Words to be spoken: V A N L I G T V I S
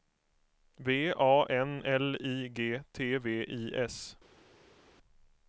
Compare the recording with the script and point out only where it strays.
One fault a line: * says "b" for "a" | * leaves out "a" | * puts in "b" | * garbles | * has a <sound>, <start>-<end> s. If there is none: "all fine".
all fine